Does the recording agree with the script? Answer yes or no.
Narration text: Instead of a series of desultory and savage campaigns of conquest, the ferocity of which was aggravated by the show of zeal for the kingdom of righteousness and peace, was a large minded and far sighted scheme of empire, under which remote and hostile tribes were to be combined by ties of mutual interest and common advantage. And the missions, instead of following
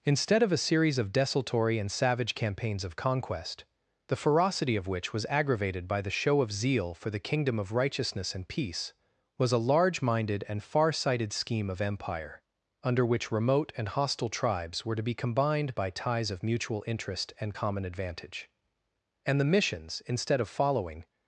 yes